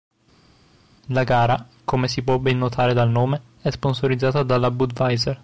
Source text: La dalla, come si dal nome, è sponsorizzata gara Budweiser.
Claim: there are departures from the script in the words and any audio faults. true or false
true